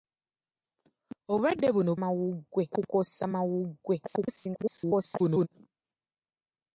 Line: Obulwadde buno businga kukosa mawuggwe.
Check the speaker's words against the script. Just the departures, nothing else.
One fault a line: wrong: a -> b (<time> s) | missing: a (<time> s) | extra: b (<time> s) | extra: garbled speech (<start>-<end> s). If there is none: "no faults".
wrong: businga -> mawuggwe (2.0 s)
extra: garbled speech (4.0-5.5 s)